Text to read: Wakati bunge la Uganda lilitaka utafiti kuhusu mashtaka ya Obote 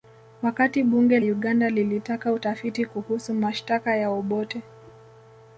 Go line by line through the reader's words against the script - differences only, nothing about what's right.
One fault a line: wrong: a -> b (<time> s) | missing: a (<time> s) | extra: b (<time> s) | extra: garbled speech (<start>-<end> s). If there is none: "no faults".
missing: la (1.2 s)